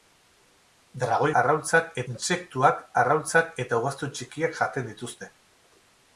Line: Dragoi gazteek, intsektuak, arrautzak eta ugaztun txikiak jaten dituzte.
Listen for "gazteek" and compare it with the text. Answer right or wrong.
wrong